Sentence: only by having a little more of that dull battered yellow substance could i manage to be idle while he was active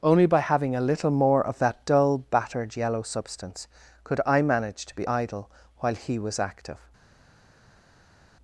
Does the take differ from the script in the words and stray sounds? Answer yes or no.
no